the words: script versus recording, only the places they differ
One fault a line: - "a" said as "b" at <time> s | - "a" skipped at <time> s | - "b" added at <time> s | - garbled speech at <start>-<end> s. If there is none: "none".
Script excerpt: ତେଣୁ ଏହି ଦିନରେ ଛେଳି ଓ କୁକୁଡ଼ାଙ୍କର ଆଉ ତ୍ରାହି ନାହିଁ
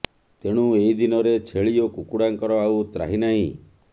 none